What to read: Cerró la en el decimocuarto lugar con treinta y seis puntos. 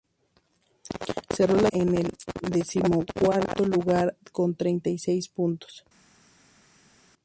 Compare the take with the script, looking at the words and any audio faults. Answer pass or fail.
pass